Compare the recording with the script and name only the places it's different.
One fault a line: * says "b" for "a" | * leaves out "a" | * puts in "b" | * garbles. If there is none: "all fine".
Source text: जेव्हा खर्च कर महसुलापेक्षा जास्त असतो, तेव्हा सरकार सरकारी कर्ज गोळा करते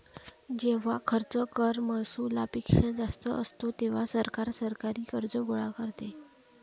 all fine